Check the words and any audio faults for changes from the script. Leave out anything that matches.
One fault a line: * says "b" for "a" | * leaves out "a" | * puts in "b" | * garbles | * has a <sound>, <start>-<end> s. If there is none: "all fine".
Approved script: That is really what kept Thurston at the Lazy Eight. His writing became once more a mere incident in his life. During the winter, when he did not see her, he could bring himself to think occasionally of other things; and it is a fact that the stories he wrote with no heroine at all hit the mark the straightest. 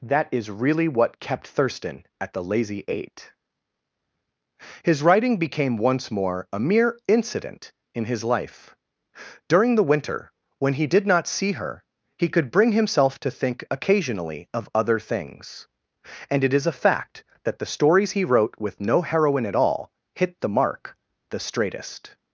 all fine